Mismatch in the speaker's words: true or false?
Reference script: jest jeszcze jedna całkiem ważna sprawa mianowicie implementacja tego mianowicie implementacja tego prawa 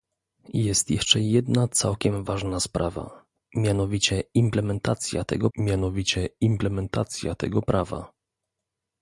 false